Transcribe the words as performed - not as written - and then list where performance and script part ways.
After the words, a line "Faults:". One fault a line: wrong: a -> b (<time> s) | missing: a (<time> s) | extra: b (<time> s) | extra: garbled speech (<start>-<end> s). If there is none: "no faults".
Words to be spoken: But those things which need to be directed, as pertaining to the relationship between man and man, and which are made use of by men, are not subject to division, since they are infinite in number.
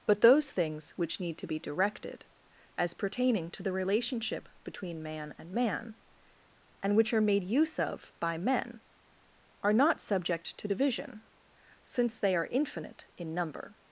But those things which need to be directed, as pertaining to the relationship between man and man, and which are made use of by men, are not subject to division, since they are infinite in number.
Faults:
no faults